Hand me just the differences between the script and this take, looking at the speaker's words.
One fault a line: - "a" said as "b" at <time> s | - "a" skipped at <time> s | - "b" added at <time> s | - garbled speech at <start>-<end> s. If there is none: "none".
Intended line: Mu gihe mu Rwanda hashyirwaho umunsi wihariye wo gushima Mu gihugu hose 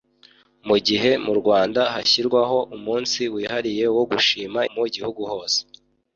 none